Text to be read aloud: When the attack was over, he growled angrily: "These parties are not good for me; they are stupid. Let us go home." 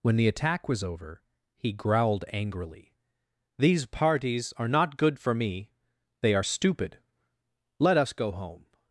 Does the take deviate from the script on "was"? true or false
false